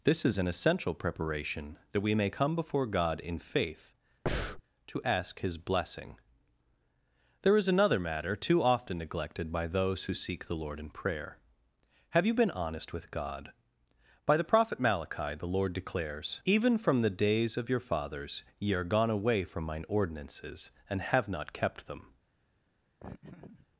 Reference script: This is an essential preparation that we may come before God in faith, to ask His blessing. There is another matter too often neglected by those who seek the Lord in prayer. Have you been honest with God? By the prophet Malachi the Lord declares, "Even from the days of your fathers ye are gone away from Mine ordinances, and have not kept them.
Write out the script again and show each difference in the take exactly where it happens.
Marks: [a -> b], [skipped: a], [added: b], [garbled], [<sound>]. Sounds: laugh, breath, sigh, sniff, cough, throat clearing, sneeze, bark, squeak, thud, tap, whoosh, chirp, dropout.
This is an essential preparation that we may come before God in faith, [breath] to ask His blessing. There is another matter too often neglected by those who seek the Lord in prayer. Have you been honest with God? By the prophet Malachi the Lord declares, "Even from the days of your fathers ye are gone away from Mine ordinances, and have not kept them. [laugh]